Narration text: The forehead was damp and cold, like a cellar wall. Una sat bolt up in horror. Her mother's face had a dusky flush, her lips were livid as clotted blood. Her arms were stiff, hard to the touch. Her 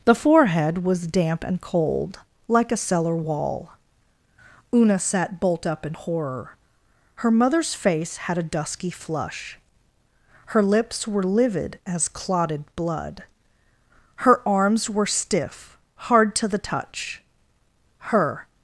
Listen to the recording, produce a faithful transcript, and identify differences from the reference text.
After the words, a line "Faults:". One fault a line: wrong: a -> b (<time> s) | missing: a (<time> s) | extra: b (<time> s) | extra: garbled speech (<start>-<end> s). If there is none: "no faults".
The forehead was damp and cold, like a cellar wall. Una sat bolt up in horror. Her mother's face had a dusky flush, her lips were livid as clotted blood. Her arms were stiff, hard to the touch. Her
Faults:
no faults